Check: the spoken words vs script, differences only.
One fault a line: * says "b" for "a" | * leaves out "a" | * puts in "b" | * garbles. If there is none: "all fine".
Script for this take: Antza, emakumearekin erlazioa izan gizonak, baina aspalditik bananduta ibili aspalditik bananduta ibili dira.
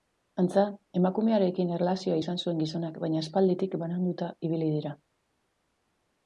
* puts in "zuen"
* leaves out "aspalditik bananduta ibili"